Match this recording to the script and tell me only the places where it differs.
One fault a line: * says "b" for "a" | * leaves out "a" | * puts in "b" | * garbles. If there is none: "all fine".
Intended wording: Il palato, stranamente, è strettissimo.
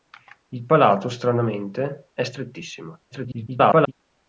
* garbles